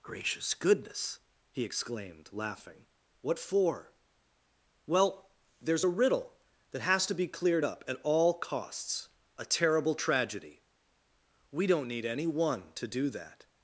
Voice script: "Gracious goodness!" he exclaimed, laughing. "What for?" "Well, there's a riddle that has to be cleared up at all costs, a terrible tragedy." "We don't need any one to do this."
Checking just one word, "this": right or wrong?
wrong